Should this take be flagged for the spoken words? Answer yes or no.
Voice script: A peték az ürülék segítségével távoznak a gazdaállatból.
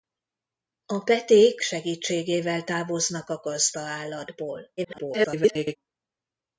yes